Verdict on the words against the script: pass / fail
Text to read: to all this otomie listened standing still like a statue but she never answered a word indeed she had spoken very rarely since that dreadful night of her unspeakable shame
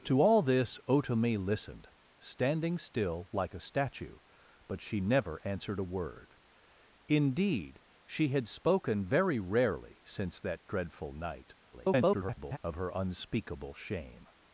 fail